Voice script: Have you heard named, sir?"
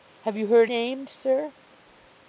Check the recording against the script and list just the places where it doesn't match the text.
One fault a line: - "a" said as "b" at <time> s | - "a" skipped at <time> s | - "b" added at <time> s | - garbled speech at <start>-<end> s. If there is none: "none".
none